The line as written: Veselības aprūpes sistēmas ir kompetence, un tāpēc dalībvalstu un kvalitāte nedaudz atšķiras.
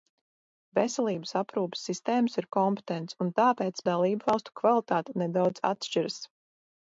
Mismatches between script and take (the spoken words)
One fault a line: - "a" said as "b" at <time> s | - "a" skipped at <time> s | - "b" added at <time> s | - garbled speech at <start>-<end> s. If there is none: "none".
none